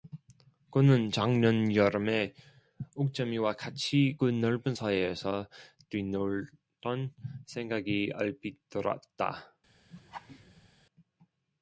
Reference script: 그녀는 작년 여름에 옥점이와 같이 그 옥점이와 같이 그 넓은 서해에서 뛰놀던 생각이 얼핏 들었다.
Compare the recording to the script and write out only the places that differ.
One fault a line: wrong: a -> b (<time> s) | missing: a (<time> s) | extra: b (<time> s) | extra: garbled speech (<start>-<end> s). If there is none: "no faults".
wrong: 그녀는 -> 그는 (0.7 s)
missing: 옥점이와 같이 그 (4.3 s)